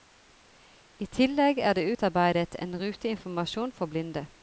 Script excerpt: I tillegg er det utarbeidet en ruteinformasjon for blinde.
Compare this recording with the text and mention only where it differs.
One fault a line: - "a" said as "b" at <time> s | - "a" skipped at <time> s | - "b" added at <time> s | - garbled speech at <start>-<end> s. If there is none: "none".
none